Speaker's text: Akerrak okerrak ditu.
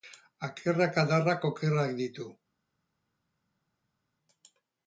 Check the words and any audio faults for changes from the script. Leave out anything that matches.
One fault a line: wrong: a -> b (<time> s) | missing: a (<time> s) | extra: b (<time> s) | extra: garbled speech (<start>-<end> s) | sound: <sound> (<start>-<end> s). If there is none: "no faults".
extra: adarrak (1.0 s)